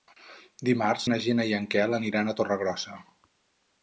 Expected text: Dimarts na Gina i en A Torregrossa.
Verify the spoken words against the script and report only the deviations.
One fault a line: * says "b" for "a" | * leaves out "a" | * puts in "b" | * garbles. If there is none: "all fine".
* puts in "Quel aniran"